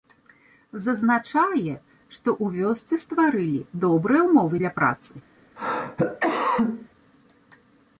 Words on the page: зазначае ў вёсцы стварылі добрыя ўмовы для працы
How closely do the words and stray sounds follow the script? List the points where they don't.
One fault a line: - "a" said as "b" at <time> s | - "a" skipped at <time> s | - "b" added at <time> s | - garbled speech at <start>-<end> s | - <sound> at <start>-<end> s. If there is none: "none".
- "што" added at 2.1 s
- cough at 5.6-6.9 s